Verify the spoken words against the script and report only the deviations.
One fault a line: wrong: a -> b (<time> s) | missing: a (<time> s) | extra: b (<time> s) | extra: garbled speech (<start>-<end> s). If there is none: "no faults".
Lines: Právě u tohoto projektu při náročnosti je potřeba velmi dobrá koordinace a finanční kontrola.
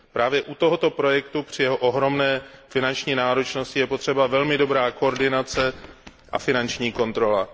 extra: jeho ohromné finanční (1.6 s)